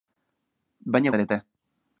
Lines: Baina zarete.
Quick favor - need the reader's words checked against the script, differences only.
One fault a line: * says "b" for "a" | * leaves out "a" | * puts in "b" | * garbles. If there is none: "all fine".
all fine